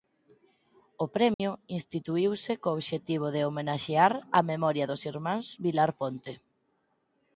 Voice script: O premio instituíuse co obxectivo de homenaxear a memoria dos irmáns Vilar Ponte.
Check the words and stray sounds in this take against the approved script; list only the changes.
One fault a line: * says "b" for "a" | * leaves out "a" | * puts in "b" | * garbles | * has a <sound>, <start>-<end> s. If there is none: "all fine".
* has a dropout, 1.3-1.4 s